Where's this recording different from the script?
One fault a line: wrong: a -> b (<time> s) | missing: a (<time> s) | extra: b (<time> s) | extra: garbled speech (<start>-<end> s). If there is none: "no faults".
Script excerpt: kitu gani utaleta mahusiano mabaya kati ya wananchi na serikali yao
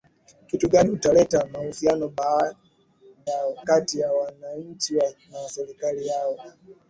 wrong: mabaya -> yao (3.3 s)